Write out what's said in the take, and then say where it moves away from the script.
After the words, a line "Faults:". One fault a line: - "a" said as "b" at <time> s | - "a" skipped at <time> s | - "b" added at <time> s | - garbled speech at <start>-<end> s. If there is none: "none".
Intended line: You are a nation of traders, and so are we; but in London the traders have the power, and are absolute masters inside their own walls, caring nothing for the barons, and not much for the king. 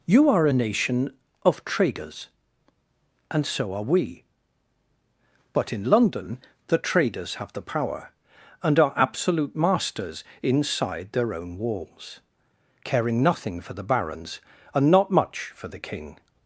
You are a nation of traders, and so are we; but in London the traders have the power, and are absolute masters inside their own walls, caring nothing for the barons, and not much for the king.
Faults:
none